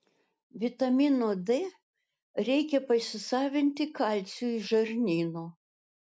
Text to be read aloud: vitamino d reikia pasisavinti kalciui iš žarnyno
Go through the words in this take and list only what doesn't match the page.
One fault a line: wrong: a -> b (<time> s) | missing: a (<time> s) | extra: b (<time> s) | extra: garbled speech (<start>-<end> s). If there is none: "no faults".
no faults